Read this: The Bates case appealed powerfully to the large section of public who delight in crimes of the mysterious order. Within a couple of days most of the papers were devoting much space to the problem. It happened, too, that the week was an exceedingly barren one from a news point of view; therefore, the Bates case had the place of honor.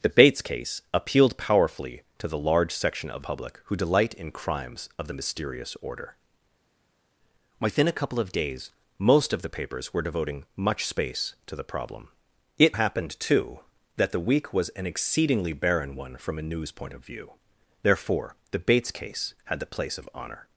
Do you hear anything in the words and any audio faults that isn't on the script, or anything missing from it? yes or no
no